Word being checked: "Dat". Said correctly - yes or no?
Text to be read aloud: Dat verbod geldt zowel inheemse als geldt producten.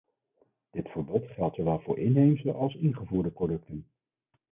no